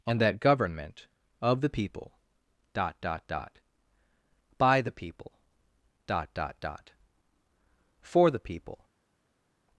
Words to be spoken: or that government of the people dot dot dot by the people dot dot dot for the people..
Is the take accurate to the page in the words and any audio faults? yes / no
no